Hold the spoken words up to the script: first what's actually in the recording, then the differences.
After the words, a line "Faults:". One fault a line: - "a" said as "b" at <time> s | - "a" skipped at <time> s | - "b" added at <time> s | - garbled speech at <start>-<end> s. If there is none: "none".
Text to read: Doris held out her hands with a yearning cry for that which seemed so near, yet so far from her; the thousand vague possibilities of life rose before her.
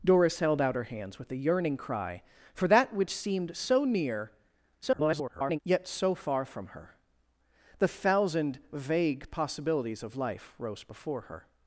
Doris held out her hands with a yearning cry for that which seemed so near, [garbled] yet so far from her; the thousand vague possibilities of life rose before her.
Faults:
- garbled speech at 4.8-5.6 s